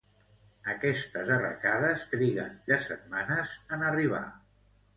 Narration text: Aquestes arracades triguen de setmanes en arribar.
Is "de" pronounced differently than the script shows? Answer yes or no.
no